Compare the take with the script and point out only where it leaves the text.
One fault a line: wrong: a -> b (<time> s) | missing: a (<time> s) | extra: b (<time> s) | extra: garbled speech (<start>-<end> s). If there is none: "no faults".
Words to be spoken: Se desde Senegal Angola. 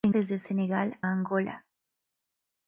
no faults